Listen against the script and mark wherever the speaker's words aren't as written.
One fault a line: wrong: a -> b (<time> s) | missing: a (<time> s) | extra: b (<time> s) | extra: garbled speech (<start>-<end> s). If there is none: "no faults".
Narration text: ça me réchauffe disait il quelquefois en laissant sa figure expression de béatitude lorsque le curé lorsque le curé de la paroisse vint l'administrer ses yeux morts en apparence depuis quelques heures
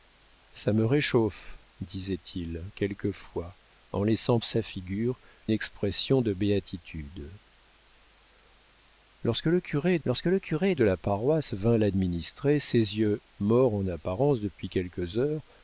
no faults